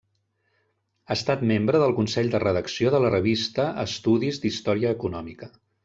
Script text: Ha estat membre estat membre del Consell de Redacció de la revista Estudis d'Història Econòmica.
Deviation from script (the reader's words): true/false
true